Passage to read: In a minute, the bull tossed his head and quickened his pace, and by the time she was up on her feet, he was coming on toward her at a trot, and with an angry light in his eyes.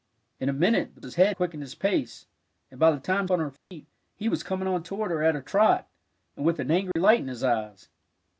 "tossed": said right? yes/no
no